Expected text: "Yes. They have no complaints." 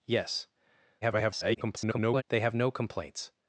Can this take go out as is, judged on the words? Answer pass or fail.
fail